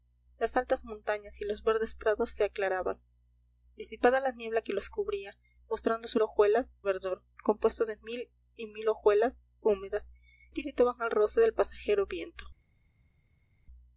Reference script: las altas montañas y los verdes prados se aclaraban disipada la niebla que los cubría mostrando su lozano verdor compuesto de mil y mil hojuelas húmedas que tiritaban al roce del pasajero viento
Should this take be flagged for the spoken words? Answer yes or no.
yes